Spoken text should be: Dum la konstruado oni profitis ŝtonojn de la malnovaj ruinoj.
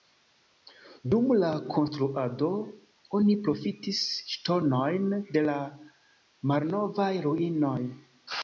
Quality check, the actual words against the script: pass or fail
pass